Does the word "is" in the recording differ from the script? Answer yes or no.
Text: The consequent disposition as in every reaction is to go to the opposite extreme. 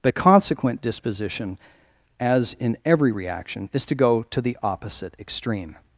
no